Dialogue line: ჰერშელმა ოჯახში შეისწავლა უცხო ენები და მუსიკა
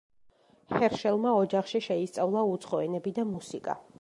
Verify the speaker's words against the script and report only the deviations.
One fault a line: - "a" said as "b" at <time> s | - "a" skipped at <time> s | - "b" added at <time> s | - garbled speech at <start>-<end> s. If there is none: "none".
none